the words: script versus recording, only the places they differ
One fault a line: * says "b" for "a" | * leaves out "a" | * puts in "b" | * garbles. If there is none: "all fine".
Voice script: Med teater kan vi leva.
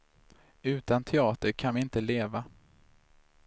* says "Utan" for "Med"
* puts in "inte"